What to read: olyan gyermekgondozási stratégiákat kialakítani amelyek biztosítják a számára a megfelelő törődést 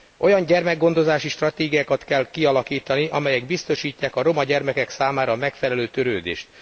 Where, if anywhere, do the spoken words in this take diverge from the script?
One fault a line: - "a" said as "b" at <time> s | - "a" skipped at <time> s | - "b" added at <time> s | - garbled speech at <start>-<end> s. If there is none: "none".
- "kell" added at 2.0 s
- "roma gyermekek" added at 4.2 s